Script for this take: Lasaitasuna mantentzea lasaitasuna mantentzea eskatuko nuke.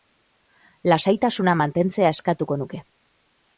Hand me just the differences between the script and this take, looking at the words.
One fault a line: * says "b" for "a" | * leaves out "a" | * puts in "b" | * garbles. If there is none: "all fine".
* leaves out "lasaitasuna mantentzea"